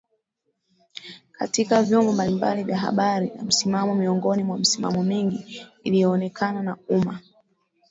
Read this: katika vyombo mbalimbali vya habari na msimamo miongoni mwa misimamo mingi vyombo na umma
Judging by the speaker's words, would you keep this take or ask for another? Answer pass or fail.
fail